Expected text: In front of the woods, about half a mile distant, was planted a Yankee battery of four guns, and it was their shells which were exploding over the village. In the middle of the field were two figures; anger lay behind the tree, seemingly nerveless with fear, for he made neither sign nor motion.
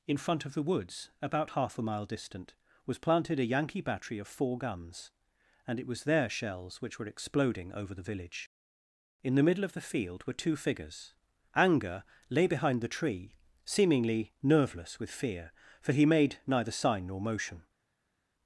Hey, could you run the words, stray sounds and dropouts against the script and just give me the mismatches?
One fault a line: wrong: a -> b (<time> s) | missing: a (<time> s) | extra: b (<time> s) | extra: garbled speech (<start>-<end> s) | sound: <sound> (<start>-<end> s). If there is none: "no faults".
no faults